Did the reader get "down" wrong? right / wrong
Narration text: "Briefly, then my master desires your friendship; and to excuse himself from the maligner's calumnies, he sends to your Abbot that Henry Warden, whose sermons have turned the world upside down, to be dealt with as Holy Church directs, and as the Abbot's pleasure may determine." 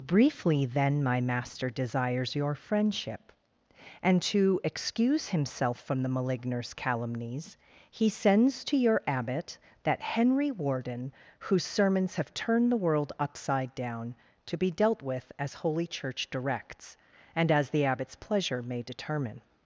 right